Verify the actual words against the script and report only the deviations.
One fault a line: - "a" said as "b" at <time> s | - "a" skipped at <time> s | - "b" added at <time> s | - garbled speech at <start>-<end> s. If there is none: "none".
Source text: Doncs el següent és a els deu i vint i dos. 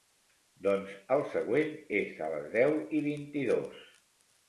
- "els" said as "les" at 2.4 s